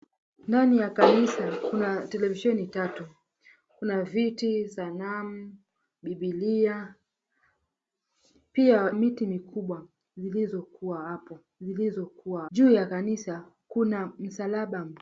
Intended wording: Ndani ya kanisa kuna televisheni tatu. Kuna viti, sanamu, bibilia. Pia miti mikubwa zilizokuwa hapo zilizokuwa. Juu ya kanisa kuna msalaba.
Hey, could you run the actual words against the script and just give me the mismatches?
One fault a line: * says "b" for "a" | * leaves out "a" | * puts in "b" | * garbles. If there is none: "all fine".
all fine